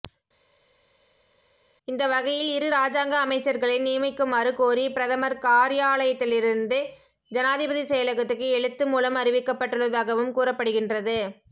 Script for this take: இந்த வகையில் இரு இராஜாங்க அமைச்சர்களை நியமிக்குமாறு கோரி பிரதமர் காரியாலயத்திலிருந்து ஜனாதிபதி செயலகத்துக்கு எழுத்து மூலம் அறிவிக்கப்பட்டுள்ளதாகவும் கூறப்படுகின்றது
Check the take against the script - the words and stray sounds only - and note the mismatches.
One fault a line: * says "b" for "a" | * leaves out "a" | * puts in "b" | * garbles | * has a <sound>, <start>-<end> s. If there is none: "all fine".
all fine